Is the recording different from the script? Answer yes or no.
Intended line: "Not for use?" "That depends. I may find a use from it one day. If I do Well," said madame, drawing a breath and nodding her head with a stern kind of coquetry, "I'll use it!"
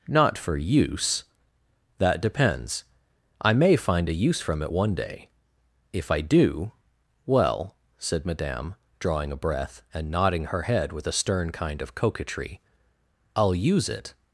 no